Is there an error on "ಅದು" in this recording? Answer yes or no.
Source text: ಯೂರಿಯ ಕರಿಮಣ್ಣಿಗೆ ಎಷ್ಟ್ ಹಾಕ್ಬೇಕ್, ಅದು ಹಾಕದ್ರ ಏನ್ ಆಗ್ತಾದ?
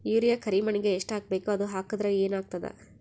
no